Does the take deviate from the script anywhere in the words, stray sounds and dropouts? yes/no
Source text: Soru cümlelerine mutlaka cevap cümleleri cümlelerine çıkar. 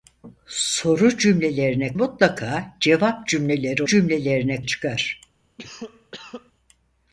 yes